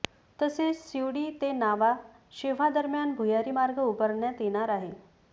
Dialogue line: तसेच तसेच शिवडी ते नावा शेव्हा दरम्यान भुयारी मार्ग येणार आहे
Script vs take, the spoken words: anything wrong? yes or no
yes